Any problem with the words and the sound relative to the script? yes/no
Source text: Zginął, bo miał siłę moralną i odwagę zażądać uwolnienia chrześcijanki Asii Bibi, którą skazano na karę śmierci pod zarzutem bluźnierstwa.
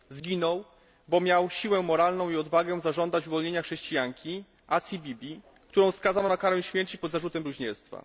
no